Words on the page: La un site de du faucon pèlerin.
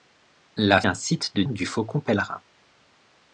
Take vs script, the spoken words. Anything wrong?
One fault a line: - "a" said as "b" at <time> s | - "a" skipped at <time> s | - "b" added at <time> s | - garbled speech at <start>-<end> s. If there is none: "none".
none